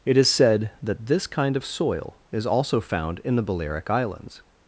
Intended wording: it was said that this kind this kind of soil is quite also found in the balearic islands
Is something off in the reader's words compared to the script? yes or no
yes